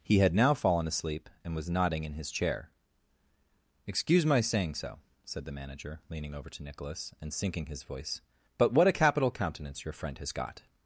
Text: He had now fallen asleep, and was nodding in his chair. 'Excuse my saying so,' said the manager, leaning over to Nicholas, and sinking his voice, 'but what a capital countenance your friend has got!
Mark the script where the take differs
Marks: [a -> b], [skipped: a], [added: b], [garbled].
He had now fallen asleep, and was nodding in his chair. 'Excuse my saying so,' said the manager, leaning over to Nicholas, and sinking his voice, 'but what a capital countenance your friend has got!